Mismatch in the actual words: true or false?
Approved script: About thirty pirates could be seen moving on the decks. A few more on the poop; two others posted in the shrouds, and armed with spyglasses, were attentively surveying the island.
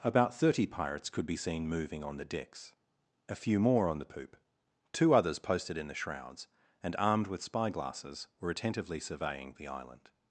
false